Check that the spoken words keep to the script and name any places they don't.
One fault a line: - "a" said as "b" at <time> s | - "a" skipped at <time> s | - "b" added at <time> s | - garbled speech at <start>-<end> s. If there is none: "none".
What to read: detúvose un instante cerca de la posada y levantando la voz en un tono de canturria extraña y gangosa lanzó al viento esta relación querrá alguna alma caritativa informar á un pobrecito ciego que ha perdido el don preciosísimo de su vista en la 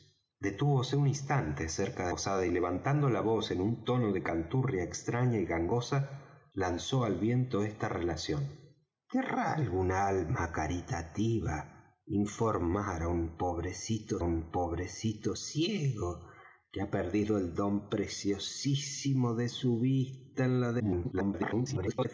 - "la" skipped at 2.1 s
- "un pobrecito" added at 14.2 s
- garbled speech at 20.8-22.1 s